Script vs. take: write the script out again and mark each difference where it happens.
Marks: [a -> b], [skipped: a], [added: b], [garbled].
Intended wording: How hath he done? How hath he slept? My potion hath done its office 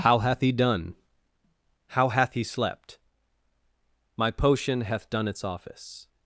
How hath he done? How hath he slept? My potion hath done its office